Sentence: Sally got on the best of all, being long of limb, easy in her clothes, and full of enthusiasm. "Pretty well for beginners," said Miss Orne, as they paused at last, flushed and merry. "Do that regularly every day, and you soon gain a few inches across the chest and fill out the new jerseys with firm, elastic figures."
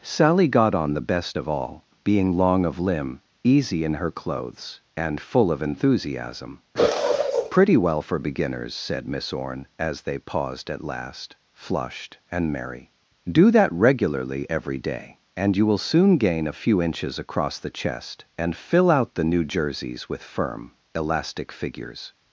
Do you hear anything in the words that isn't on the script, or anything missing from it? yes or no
yes